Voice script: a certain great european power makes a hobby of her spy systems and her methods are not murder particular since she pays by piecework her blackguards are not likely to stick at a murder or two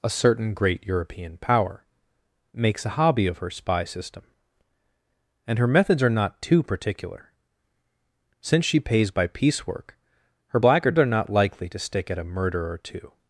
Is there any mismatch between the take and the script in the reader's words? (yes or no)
yes